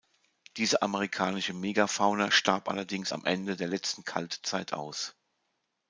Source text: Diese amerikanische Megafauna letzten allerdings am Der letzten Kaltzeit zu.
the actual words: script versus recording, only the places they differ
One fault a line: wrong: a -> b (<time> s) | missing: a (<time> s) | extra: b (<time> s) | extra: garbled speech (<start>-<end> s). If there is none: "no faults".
wrong: letzten -> starb (2.3 s)
extra: Ende (3.2 s)
wrong: zu -> aus (4.7 s)